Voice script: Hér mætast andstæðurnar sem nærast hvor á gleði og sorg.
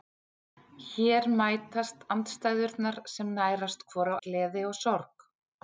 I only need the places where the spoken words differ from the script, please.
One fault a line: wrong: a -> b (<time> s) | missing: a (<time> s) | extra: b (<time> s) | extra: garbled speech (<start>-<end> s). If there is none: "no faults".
no faults